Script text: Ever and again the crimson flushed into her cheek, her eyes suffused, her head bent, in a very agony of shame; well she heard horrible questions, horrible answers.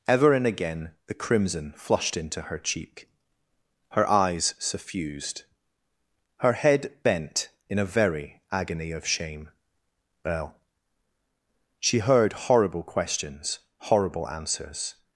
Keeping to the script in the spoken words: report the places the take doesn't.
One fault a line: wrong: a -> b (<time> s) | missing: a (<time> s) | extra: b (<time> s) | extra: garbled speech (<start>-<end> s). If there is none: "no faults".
no faults